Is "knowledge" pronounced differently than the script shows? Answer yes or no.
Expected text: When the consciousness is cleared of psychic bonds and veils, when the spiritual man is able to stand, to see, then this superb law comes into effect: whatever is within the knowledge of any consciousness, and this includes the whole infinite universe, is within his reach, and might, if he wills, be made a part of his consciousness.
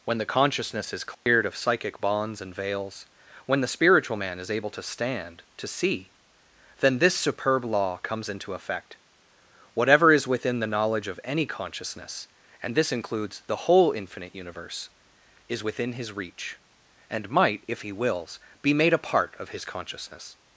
no